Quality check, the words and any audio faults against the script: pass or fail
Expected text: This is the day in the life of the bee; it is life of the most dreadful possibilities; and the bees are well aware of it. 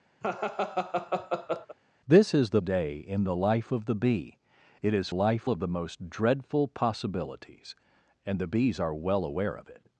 fail